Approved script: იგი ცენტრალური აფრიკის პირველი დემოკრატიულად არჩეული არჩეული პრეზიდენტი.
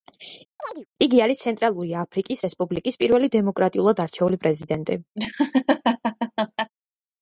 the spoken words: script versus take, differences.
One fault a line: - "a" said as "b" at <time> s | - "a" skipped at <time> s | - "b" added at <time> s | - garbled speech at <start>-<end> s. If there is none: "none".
- "არის" added at 1.3 s
- "რესპუბლიკის" added at 2.5 s
- "არჩეული" skipped at 4.4 s